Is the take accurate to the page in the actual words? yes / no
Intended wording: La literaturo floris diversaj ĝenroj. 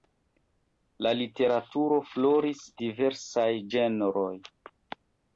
yes